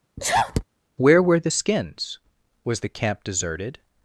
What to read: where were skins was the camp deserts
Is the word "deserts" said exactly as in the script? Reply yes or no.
no